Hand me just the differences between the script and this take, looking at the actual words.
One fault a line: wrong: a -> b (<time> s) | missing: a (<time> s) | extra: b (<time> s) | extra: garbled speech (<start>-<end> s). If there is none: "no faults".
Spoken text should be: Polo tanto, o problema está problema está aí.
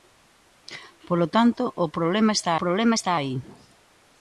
no faults